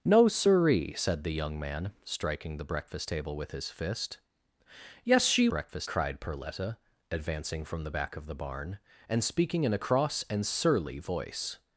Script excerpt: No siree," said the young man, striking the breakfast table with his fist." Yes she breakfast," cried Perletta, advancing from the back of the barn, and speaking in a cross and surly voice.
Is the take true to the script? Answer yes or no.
yes